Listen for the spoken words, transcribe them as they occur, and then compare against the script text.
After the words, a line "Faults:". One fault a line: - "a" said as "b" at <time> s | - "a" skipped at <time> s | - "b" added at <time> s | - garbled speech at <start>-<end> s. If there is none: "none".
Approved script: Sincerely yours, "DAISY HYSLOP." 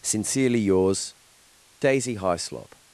Sincerely yours, "DAISY HYSLOP."
Faults:
none